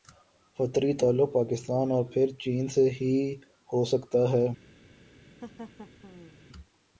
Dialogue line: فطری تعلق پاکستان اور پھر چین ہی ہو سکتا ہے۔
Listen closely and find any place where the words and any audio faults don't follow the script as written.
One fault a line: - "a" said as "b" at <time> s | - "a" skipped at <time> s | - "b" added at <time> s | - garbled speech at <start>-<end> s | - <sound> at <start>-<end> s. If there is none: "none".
- "سے" added at 2.7 s
- laugh at 5.4-6.4 s